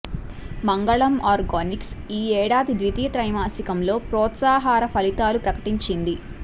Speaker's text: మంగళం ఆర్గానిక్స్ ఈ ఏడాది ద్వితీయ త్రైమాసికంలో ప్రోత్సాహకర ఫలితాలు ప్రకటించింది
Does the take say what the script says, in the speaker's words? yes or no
yes